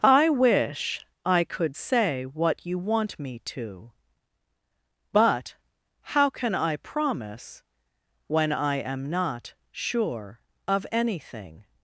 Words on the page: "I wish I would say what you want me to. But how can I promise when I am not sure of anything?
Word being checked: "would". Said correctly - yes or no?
no